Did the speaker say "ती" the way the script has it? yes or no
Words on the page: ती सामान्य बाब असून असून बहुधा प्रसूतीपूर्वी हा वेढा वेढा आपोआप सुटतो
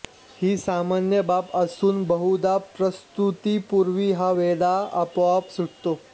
no